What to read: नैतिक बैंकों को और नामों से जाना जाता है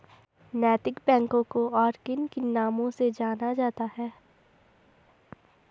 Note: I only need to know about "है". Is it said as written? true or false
true